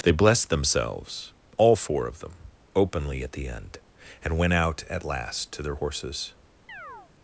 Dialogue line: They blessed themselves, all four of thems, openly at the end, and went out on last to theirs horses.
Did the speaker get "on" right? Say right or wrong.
wrong